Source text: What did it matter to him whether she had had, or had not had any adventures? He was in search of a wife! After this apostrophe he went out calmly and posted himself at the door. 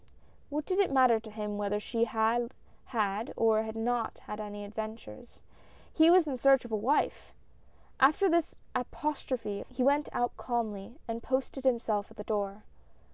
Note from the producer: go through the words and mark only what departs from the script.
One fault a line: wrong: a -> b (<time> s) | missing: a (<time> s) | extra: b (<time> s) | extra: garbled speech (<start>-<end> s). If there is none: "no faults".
no faults